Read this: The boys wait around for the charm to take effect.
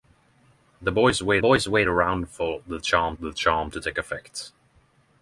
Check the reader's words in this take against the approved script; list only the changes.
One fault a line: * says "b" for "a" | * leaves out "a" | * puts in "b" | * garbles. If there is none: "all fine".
* puts in "boys wait"
* puts in "the charm"